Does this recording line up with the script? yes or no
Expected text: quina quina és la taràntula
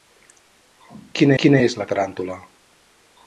yes